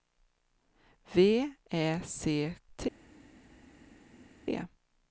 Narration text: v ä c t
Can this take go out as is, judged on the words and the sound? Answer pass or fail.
pass